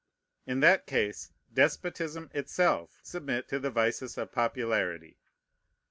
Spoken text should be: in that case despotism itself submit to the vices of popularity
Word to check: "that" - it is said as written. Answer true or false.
true